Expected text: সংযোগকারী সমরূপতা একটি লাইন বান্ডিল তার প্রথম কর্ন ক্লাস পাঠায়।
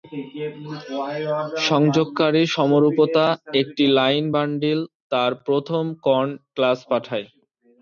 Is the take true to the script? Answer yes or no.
yes